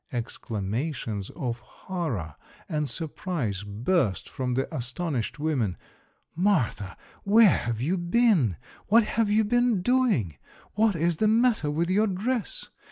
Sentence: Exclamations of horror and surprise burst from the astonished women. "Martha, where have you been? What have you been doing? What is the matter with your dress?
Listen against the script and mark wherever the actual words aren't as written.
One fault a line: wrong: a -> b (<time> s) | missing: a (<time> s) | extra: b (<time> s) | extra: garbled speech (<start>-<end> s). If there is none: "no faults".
no faults